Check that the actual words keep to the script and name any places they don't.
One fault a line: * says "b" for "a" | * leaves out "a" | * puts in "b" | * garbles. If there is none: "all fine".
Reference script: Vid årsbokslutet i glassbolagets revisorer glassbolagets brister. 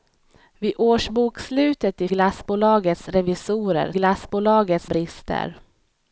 all fine